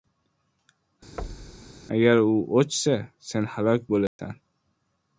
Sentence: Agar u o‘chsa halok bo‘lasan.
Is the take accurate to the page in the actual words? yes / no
no